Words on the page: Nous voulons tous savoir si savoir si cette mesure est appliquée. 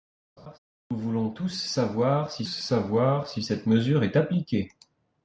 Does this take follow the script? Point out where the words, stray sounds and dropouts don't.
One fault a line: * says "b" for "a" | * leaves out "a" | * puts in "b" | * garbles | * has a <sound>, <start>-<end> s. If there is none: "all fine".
* has a laugh, 0.4-0.6 s